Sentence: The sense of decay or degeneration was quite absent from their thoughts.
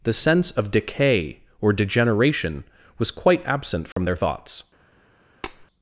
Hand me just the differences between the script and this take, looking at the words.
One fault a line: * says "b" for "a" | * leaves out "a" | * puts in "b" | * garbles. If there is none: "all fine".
all fine